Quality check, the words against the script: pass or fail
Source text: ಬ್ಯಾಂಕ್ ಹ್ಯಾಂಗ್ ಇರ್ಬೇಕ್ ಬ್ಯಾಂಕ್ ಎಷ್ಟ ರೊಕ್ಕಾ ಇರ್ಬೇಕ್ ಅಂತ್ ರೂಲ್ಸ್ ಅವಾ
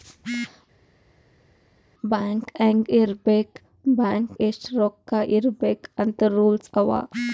pass